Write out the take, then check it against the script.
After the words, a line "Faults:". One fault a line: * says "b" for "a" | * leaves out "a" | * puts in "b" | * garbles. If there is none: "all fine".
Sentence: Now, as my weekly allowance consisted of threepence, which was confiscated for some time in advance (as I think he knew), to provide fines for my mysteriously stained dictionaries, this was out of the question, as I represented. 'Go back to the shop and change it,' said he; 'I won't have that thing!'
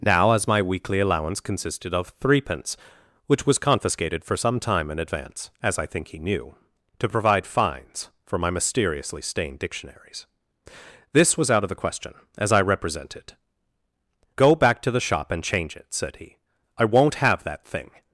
Now, as my weekly allowance consisted of threepence, which was confiscated for some time in advance (as I think he knew), to provide fines for my mysteriously stained dictionaries, this was out of the question, as I represented. 'Go back to the shop and change it,' said he; 'I won't have that thing!'
Faults:
all fine